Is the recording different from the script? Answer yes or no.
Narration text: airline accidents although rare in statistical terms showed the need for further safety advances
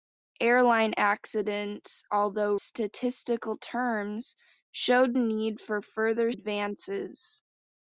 yes